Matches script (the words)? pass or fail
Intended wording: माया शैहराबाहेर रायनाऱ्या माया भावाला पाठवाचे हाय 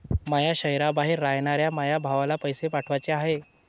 fail